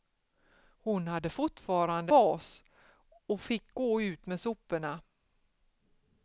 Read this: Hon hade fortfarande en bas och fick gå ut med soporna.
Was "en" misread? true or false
true